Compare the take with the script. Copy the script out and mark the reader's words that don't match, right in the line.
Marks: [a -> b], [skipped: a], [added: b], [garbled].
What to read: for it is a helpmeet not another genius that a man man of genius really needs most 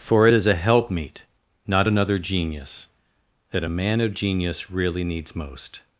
for it is a helpmeet not another genius that a man [skipped: man] of genius really needs most